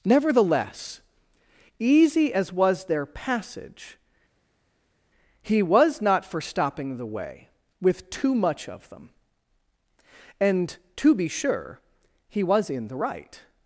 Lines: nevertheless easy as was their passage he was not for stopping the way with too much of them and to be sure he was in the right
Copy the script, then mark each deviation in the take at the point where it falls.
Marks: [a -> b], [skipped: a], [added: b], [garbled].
nevertheless easy as was their passage he was not for stopping the way with too much of them and to be sure he was in the right